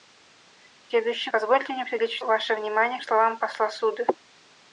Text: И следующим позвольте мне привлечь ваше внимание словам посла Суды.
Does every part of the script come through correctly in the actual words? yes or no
yes